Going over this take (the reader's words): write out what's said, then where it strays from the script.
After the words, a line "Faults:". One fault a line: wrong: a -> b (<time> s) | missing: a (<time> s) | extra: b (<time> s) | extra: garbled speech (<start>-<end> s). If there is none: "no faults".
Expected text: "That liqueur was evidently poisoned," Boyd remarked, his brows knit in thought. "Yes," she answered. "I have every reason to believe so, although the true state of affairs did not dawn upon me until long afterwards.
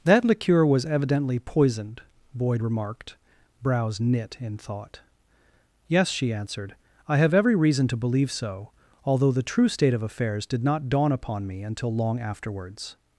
"That liqueur was evidently poisoned," Boyd remarked, brows knit in thought. "Yes," she answered. "I have every reason to believe so, although the true state of affairs did not dawn upon me until long afterwards.
Faults:
missing: his (3.2 s)